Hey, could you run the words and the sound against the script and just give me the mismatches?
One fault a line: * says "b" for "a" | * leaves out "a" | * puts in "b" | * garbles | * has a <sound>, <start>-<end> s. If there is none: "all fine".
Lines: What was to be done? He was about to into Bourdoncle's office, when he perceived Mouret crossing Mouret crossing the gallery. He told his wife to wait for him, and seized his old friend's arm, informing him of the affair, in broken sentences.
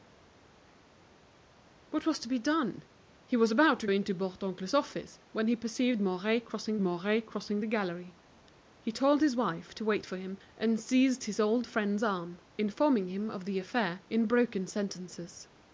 all fine